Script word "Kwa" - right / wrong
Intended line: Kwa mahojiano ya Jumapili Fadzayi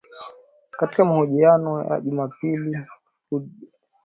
wrong